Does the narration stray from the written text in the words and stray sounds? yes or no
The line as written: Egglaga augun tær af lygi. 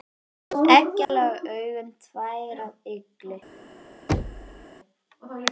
yes